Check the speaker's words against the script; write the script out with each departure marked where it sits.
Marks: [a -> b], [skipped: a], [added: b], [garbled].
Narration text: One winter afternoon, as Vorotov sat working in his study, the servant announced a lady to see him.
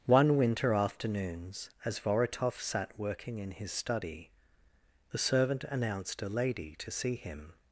One winter [afternoon, -> afternoons] as Vorotov sat working in his study, the servant announced a lady to see him.